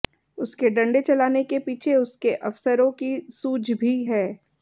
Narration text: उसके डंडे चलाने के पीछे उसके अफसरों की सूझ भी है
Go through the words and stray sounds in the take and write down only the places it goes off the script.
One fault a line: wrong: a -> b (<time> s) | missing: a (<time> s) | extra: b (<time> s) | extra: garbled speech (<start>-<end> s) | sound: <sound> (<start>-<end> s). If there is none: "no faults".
no faults